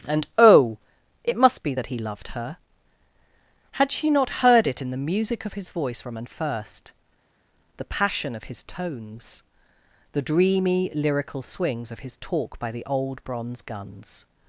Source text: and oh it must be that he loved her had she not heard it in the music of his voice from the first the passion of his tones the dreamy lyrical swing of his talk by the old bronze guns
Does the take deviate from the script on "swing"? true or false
true